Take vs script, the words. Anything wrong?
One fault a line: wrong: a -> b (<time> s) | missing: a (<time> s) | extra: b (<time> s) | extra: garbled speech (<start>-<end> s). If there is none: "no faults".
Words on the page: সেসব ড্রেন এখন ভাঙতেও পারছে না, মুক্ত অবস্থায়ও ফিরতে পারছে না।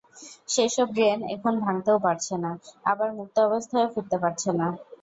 extra: আবার (2.9 s)